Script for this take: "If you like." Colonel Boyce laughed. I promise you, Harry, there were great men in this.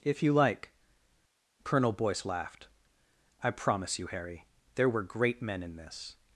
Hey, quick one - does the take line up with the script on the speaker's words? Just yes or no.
yes